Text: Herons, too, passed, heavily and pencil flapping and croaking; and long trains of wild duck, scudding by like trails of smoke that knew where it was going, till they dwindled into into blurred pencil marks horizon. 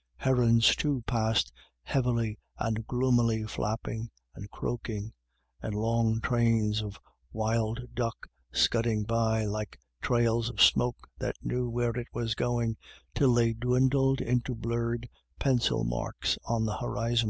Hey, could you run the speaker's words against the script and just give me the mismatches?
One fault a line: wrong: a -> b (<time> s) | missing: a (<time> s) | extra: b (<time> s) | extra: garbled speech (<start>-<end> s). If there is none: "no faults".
wrong: pencil -> gloomily (2.9 s)
missing: into (14.5 s)
extra: on the (16.4 s)